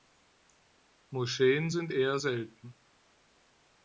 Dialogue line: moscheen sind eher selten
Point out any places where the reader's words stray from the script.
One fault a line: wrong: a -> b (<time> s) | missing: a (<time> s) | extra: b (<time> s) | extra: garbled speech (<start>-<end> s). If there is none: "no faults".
no faults